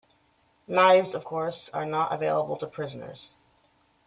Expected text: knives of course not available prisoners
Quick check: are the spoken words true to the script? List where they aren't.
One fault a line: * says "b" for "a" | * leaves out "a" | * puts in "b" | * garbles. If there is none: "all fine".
* puts in "are"
* puts in "to"